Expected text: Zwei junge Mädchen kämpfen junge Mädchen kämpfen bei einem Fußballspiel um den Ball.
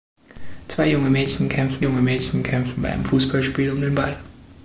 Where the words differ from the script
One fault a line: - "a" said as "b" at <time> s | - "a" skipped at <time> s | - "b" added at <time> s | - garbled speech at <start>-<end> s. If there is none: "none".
none